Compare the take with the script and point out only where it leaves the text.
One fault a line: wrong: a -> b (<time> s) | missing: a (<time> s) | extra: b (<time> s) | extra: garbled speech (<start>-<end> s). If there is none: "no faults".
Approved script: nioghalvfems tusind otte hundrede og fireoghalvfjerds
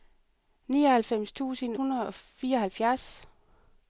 missing: otte (1.8 s)